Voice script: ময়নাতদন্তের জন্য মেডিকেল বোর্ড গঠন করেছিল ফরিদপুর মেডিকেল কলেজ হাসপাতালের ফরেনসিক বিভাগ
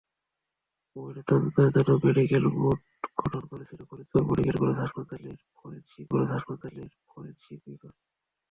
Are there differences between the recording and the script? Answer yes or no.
yes